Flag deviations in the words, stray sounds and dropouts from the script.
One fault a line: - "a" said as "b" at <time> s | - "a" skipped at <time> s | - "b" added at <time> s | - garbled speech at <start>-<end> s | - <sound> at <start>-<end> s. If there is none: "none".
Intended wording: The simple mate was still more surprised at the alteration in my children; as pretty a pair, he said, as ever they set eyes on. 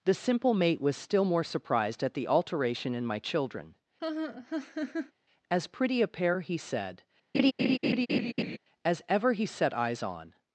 - laugh at 4.0-5.1 s
- laugh at 7.3-8.6 s
- "they" said as "he" at 9.3 s